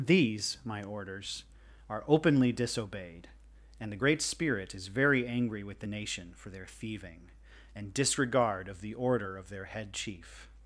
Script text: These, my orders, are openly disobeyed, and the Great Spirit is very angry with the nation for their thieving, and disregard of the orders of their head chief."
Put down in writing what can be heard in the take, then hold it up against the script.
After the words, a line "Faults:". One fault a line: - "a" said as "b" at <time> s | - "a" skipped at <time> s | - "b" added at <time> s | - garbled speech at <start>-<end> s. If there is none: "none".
These, my orders, are openly disobeyed, and the Great Spirit is very angry with the nation for their thieving, and disregard of the order of their head chief."
Faults:
- "orders" said as "order" at 8.9 s